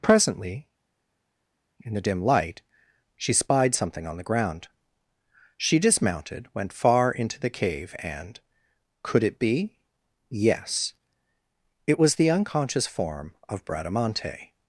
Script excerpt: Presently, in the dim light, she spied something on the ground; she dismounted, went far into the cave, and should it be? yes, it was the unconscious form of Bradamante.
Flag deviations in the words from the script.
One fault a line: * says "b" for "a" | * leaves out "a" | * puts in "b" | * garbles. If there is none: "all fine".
* says "could" for "should"